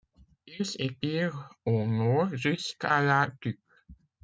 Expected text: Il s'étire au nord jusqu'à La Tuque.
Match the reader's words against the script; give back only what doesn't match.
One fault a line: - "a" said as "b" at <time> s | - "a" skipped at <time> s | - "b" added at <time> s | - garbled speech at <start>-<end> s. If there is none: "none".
none